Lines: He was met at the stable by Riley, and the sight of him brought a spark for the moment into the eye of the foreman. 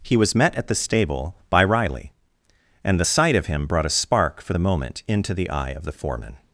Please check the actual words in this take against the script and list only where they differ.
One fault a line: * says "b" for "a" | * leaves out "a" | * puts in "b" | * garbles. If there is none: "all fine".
all fine